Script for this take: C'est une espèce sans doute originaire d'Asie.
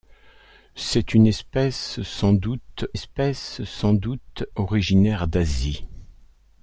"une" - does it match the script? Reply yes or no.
yes